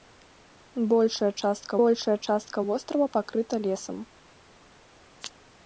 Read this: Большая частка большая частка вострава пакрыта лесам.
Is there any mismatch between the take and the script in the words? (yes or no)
no